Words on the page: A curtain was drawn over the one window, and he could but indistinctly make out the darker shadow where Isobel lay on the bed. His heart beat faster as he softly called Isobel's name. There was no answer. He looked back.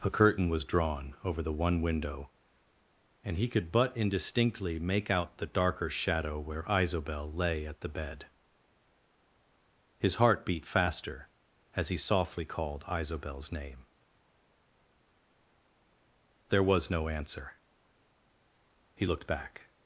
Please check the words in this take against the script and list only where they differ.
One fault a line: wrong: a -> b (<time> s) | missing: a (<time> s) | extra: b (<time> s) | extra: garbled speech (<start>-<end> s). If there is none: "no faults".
wrong: on -> at (7.7 s)